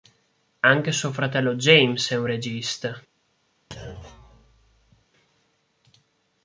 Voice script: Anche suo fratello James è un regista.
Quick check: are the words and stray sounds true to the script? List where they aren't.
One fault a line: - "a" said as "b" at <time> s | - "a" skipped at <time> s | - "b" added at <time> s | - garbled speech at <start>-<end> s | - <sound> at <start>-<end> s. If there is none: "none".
- thud at 3.7-5.1 s